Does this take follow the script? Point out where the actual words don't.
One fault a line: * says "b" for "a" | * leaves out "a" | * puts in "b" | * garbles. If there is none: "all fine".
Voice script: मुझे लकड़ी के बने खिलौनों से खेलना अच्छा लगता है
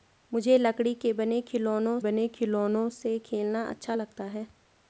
* puts in "बने खिलौनों"